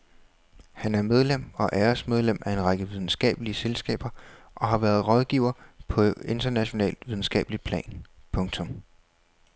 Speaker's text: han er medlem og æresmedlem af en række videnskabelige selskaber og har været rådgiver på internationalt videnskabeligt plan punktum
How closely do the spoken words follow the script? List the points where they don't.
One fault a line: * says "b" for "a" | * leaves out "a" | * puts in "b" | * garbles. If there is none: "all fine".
all fine